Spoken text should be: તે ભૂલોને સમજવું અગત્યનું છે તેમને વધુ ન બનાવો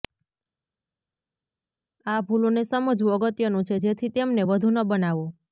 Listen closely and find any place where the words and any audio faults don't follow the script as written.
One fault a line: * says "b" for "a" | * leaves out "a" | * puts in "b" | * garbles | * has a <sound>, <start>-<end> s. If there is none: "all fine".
* says "આ" for "તે"
* puts in "જેથી"